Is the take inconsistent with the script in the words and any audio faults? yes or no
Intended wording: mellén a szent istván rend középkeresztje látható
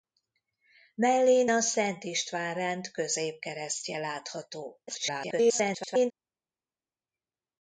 yes